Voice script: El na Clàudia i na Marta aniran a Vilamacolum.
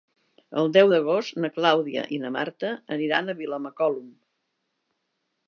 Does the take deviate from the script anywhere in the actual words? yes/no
yes